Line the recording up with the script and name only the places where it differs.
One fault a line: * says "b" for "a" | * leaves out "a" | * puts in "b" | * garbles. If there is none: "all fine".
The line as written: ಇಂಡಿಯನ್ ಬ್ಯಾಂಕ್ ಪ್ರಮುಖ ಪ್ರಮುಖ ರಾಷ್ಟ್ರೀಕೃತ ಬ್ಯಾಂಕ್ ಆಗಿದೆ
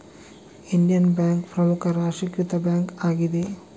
* leaves out "ಪ್ರಮುಖ"